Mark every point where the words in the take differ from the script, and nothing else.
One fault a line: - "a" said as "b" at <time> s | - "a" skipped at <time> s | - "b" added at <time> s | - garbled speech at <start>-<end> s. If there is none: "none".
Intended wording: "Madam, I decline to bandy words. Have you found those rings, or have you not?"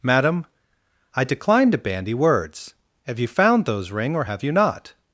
- "rings" said as "ring" at 3.9 s